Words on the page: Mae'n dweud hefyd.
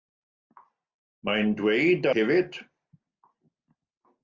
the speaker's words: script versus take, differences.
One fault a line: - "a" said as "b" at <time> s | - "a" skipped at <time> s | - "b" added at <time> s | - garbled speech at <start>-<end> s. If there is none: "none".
none